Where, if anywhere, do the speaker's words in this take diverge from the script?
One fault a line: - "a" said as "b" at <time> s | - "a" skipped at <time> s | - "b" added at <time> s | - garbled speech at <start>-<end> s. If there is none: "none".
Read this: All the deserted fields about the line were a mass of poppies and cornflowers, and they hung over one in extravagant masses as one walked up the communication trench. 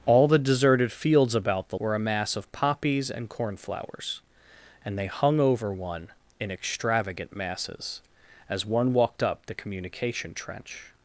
- "line" skipped at 1.8 s